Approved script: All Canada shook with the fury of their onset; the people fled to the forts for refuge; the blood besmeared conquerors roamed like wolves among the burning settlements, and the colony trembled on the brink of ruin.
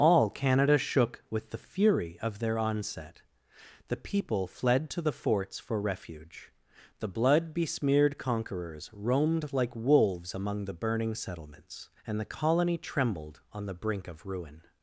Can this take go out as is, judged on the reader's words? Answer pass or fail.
pass